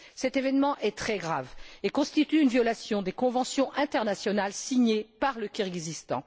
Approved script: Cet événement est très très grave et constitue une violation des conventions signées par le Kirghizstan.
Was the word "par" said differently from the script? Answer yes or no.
no